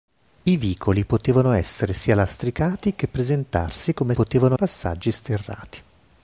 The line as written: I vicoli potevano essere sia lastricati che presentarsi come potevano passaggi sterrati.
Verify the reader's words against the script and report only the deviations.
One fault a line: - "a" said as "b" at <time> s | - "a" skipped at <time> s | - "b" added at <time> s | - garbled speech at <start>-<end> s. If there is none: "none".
none